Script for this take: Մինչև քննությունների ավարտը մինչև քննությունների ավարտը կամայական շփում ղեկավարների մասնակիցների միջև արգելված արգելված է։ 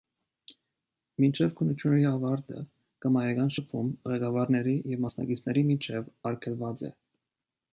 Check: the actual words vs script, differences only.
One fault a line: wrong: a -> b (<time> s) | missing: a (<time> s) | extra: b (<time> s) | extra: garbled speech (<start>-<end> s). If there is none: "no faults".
missing: մինչև քննությունների ավարտը (2.6 s)
extra: և (4.9 s)
missing: արգելված (6.8 s)